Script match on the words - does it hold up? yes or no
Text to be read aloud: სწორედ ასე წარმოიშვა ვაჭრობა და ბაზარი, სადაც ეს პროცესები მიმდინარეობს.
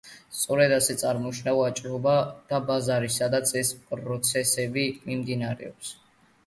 yes